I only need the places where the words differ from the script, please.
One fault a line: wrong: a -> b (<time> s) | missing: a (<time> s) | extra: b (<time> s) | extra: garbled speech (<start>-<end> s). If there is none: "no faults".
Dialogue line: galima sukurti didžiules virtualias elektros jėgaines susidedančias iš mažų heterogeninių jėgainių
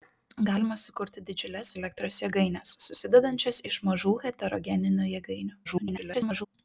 missing: virtualias (1.7 s)
extra: garbled speech (5.6-6.5 s)